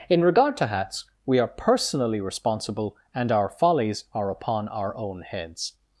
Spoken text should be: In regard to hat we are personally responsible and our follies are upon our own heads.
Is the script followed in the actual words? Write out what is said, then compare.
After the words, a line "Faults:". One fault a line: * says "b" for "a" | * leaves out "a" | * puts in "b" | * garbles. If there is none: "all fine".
In regard to hats we are personally responsible and our follies are upon our own heads.
Faults:
* says "hats" for "hat"